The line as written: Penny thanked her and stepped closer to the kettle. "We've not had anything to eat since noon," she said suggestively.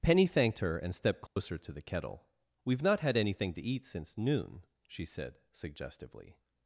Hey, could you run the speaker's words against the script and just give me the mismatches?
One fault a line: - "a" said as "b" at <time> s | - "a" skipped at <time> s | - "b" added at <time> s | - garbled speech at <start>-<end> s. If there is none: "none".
none